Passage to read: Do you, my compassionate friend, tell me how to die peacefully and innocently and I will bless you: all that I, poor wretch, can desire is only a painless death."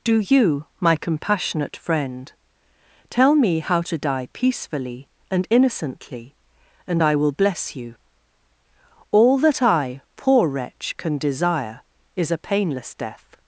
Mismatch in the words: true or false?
true